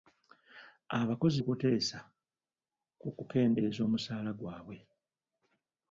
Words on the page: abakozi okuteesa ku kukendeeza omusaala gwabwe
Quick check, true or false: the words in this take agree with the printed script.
true